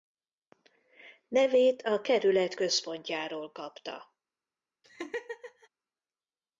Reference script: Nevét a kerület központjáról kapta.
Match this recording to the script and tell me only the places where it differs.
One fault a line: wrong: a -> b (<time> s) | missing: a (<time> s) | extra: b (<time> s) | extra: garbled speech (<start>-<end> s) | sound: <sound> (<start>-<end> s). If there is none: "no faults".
sound: laugh (4.8-5.7 s)